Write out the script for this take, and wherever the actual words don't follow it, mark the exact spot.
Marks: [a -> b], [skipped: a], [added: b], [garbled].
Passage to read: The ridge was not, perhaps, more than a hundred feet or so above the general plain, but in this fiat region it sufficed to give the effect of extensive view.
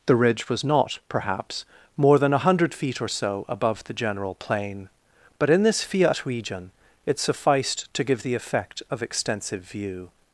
The ridge was not, perhaps, more than a hundred feet or so above the general plain, but in this fiat region it sufficed to give the effect of extensive view.